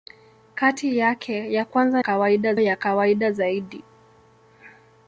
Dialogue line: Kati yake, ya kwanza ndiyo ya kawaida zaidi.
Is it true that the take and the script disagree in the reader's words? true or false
true